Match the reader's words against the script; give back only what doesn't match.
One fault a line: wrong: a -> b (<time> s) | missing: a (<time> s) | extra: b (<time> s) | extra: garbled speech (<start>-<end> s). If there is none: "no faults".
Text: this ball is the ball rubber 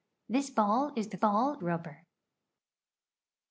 no faults